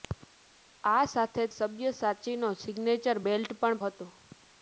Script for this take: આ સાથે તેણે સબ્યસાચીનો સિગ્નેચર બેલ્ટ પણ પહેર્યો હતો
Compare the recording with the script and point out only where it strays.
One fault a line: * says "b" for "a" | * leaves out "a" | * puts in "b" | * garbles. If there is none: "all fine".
* leaves out "તેણે"
* leaves out "પહેર્યો"